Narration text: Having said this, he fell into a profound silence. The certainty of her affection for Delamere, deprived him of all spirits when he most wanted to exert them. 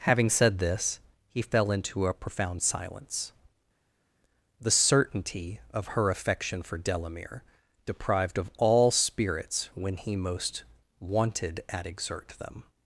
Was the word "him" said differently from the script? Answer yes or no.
yes